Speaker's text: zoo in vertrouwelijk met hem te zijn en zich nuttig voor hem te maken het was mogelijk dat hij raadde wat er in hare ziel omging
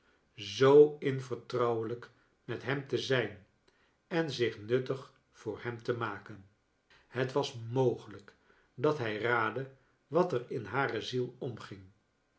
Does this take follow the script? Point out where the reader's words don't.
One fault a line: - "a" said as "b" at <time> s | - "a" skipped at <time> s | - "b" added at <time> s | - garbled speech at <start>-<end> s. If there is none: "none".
none